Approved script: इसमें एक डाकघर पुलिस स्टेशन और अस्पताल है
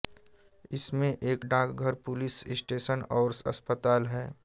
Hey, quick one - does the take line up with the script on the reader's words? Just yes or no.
yes